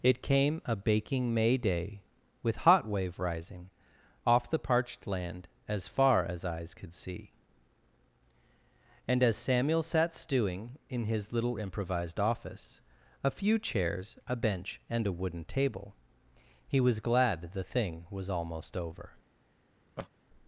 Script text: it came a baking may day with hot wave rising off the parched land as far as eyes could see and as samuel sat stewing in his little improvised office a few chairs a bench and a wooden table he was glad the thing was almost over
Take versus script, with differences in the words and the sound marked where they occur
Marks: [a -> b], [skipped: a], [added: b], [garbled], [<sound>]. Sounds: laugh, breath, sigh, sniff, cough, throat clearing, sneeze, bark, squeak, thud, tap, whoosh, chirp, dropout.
it came a baking may day with hot wave rising off the parched land as far as eyes could see and as samuel sat stewing in his little improvised office a few chairs a bench and a wooden table he was glad the thing was almost over [laugh]